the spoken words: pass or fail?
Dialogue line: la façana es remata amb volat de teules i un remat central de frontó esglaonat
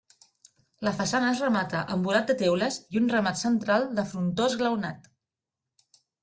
pass